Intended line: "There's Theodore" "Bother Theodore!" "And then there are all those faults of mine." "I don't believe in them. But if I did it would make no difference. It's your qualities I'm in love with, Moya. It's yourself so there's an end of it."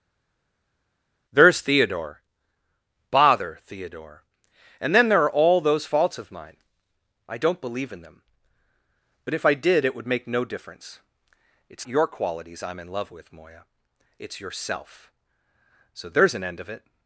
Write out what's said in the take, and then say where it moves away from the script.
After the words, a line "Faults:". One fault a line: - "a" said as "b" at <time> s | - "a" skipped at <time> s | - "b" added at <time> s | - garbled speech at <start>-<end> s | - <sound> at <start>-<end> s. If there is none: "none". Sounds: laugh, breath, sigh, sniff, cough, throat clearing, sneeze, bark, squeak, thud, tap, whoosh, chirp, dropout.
"There's Theodore" "Bother Theodore!" "And then there are all those faults of mine." "I don't believe in them. But if I did it would make no difference. It's your qualities I'm in love with, Moya. It's yourself so there's an end of it."
Faults:
none